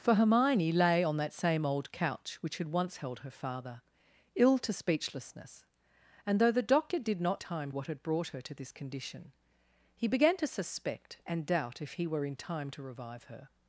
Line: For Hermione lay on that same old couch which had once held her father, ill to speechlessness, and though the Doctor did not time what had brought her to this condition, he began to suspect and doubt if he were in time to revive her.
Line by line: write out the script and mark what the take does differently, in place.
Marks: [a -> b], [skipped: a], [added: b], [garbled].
For Hermione lay on that same old couch which had once held her father, ill to speechlessness, and though the Doctor did not time what had brought her to this condition, he began to suspect and doubt if he were in time to revive her.